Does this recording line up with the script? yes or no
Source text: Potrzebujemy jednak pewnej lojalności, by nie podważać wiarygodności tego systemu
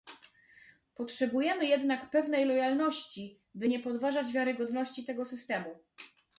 yes